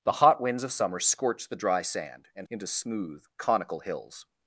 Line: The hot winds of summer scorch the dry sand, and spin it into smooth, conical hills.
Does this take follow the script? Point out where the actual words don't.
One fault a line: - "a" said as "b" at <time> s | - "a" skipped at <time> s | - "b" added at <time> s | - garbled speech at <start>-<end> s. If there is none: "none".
- "spin it" skipped at 2.5 s